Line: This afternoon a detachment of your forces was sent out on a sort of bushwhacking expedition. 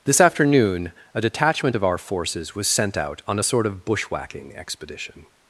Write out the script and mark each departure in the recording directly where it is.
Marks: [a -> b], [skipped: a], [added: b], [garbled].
This afternoon a detachment of [your -> our] forces was sent out on a sort of bushwhacking expedition.